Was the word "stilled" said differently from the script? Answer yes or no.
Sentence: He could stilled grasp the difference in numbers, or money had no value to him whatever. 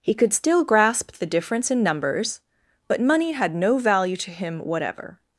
yes